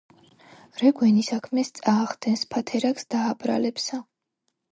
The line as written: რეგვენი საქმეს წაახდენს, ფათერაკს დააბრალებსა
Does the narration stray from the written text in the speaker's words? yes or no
no